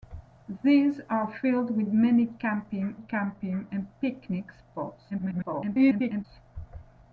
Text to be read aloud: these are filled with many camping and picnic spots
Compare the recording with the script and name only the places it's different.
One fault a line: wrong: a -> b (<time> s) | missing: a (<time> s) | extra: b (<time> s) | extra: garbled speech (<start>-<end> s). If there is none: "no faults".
extra: camping (2.9 s)
extra: garbled speech (5.1-6.3 s)